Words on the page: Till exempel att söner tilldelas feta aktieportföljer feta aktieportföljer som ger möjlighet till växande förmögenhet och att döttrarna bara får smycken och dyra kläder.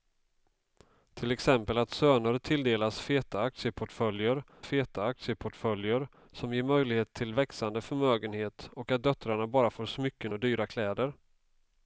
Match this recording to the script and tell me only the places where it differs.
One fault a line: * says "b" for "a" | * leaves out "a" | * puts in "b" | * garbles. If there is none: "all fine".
all fine